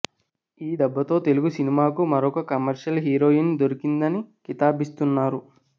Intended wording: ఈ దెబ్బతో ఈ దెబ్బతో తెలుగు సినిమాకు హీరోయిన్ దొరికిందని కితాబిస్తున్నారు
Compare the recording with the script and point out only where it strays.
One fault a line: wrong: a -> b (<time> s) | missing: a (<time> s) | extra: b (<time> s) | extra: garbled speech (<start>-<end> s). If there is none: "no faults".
wrong: ఈ దెబ్బతో తెలుగు సినిమాకు -> తెలుగు సినిమాకు మరొక కమర్షియల్ (1.2 s)